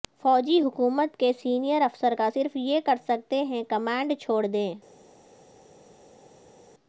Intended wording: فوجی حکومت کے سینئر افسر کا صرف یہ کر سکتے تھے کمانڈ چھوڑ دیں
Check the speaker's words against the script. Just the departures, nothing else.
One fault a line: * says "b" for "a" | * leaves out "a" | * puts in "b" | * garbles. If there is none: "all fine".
* says "ہیں" for "تھے"